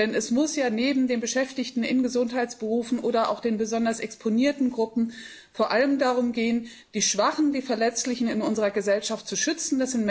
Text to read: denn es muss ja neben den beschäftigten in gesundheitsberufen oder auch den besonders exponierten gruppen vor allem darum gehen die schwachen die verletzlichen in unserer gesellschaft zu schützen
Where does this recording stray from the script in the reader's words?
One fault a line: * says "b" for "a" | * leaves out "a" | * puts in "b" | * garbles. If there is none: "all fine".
all fine